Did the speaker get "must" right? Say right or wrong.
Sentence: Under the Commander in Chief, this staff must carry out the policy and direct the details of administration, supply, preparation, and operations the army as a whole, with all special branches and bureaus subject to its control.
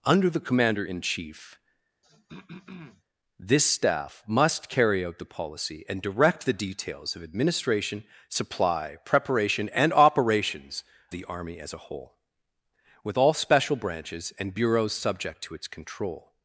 right